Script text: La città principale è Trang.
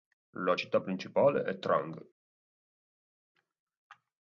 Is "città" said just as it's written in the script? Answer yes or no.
yes